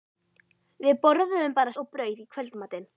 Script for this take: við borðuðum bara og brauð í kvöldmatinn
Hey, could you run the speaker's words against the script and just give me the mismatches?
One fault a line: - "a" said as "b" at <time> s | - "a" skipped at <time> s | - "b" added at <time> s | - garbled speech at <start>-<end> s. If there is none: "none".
none